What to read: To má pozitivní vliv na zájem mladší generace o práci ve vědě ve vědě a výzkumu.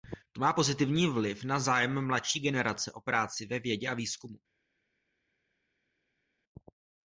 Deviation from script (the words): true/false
true